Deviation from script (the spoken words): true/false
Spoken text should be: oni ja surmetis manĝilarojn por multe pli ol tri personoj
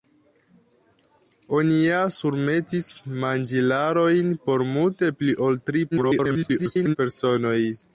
true